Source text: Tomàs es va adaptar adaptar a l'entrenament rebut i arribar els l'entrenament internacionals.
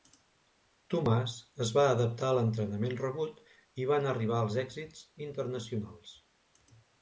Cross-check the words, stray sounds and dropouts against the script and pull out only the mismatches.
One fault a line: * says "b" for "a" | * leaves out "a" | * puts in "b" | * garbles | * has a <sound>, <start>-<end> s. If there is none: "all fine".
* leaves out "adaptar"
* puts in "van"
* says "èxits" for "l'entrenament"